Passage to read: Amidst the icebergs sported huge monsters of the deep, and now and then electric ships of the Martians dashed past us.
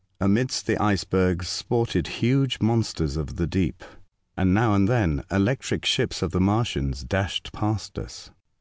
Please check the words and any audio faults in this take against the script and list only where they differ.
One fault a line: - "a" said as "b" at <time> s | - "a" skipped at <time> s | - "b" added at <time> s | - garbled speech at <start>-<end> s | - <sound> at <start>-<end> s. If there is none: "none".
none